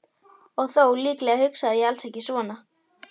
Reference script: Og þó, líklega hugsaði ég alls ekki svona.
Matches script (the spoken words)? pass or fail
pass